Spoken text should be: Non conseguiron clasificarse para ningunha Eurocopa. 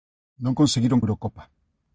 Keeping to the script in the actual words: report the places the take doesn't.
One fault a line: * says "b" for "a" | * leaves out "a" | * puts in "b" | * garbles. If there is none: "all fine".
* leaves out "clasificarse para ningunha"